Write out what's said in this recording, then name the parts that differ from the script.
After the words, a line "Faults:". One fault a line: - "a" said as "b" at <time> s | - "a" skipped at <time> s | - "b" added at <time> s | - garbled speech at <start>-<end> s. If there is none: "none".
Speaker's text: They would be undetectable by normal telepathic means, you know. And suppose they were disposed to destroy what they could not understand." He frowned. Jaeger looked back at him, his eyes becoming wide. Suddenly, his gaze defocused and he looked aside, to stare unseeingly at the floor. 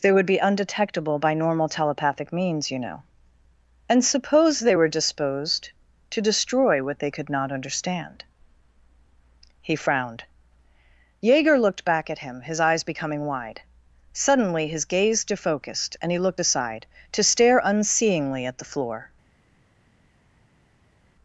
They would be undetectable by normal telepathic means, you know. And suppose they were disposed to destroy what they could not understand." He frowned. Jaeger looked back at him, his eyes becoming wide. Suddenly, his gaze defocused and he looked aside, to stare unseeingly at the floor.
Faults:
none